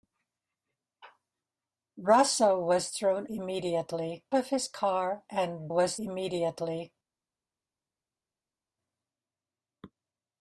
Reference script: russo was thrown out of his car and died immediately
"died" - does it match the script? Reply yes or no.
no